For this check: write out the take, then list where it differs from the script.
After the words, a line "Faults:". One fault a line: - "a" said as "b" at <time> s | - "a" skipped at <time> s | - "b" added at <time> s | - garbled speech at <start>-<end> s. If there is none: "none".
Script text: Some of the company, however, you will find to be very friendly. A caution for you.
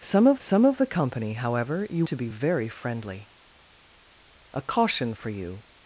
Some of some of the company, however, you to be very friendly. A caution for you.
Faults:
- "some of" added at 0.4 s
- "will find" skipped at 2.1 s